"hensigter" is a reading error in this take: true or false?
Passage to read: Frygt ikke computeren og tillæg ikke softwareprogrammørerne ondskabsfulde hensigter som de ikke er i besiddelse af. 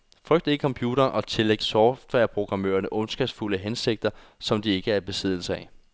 false